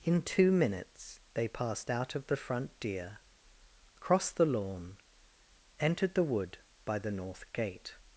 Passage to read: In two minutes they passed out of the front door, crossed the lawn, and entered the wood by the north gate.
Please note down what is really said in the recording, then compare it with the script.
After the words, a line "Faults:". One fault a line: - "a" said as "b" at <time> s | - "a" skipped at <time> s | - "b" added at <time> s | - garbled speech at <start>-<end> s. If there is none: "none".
In two minutes they passed out of the front deer, crossed the lawn, entered the wood by the north gate.
Faults:
- "door" said as "deer" at 2.8 s
- "and" skipped at 5.0 s